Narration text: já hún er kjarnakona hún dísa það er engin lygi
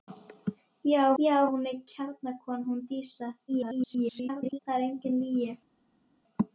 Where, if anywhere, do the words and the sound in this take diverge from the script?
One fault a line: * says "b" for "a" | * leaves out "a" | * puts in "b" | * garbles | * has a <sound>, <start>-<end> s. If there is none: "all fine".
* puts in "já"
* garbles